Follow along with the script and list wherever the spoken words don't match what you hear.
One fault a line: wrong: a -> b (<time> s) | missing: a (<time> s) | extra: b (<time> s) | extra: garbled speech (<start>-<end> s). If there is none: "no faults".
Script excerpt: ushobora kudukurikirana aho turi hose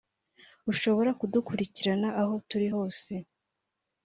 no faults